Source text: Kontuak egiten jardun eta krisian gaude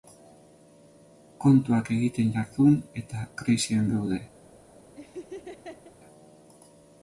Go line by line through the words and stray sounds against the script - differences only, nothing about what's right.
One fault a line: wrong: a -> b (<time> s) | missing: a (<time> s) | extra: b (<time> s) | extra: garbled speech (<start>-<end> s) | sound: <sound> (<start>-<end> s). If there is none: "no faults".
sound: laugh (5.0-5.9 s)